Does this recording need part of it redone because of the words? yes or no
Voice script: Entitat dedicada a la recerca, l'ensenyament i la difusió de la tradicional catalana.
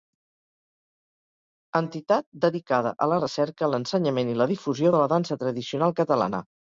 yes